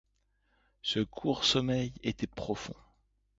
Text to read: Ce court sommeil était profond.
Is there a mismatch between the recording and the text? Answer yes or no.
no